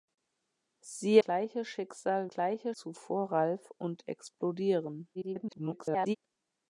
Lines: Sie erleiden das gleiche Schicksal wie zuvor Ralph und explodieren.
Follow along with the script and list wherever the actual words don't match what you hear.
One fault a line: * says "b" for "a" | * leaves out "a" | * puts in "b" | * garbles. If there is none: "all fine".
* leaves out "erleiden das"
* says "gleiche" for "wie"
* garbles